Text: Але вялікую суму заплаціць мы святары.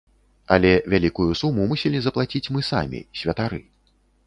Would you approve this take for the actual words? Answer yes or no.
no